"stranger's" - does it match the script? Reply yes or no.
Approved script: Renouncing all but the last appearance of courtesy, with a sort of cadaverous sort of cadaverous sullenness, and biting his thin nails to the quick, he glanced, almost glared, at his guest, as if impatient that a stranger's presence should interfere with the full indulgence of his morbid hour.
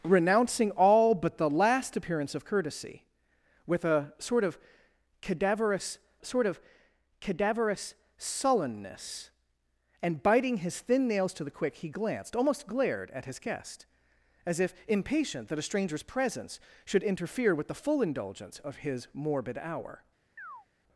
yes